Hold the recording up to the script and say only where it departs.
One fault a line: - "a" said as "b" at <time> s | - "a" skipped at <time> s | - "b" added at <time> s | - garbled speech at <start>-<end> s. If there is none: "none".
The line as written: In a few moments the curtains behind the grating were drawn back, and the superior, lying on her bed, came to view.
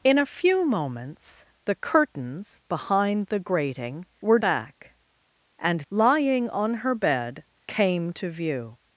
- "drawn" skipped at 4.4 s
- "the superior" skipped at 5.8 s